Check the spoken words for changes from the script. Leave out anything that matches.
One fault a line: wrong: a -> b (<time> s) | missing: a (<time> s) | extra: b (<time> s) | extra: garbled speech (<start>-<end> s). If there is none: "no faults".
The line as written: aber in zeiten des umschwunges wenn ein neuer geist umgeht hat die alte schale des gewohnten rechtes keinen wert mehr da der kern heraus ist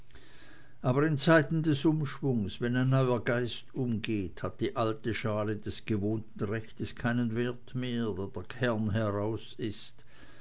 no faults